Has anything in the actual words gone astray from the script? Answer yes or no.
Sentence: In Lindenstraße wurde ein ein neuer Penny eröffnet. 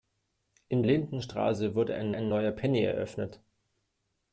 no